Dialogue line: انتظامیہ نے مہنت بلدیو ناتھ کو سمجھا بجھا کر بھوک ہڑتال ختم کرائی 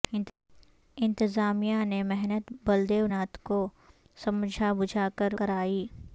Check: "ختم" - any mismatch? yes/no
yes